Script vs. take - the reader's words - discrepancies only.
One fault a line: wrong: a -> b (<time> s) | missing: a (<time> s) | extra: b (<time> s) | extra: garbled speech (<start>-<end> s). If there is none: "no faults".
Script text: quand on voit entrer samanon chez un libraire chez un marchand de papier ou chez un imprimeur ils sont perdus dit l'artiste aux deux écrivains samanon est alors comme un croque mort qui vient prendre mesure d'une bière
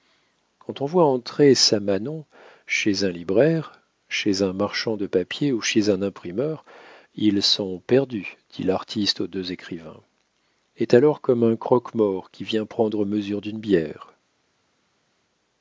missing: samanon (10.0 s)